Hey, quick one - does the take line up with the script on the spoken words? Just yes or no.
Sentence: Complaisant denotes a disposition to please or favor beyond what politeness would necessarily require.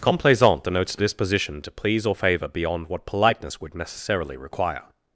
yes